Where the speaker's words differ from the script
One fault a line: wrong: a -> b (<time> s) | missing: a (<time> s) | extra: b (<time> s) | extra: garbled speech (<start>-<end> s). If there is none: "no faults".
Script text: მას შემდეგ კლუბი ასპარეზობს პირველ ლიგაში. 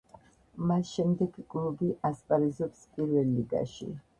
no faults